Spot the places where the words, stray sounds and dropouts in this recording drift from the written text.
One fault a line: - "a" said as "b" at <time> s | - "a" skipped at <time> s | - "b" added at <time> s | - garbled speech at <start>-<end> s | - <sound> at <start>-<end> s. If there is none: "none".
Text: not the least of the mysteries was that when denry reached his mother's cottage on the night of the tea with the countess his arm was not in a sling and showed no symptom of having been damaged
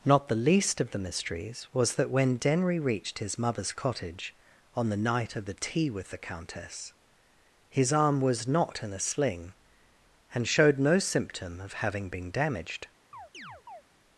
- chirp at 13.1-13.8 s